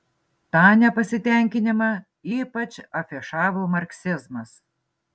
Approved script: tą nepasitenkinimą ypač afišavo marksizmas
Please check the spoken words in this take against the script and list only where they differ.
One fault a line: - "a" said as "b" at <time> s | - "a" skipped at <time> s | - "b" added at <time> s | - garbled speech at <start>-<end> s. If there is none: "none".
none